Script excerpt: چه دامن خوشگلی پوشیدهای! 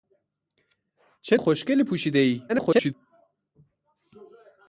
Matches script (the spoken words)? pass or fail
fail